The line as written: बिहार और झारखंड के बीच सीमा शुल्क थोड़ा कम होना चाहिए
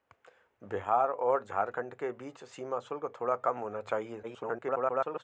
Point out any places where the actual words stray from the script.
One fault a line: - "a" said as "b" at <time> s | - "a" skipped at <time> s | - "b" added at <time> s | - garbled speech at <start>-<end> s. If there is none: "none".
- garbled speech at 4.2-5.2 s